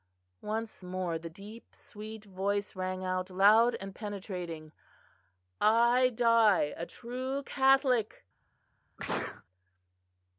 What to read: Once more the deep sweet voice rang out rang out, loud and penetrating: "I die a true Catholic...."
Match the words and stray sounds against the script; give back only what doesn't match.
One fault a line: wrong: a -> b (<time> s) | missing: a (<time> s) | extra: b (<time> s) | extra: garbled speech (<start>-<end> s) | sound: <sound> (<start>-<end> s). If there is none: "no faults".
missing: rang out (3.3 s)
sound: sneeze (9.0-9.4 s)